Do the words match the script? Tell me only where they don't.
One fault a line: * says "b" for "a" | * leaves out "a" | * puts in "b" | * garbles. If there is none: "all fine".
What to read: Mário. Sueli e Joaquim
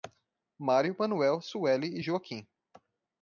* puts in "Manuel"